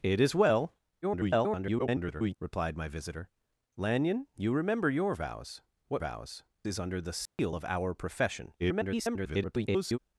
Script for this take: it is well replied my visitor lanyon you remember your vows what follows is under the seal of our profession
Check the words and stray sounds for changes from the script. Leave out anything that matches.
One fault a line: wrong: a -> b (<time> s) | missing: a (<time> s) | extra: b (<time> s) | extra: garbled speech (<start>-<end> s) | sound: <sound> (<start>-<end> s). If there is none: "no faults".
extra: garbled speech (1.0-2.4 s)
wrong: follows -> vows (6.0 s)
sound: dropout (7.3-7.4 s)
extra: garbled speech (8.6-10.0 s)